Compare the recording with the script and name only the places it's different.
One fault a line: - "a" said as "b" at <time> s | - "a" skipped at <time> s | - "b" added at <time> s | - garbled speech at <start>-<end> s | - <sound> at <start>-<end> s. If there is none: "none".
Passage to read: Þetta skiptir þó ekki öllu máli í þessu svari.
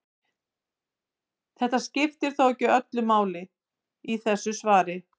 none